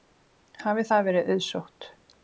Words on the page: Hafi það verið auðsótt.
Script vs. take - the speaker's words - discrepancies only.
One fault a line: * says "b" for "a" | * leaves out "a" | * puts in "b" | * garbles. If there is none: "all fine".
all fine